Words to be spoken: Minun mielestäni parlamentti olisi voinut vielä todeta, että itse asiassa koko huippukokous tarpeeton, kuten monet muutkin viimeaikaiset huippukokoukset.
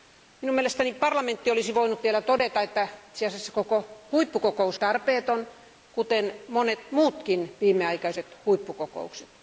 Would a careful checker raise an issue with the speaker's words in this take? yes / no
no